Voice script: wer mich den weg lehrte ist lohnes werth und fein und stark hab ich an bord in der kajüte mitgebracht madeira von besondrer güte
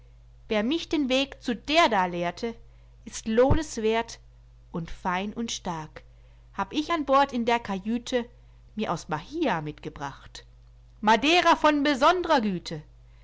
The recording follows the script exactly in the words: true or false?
false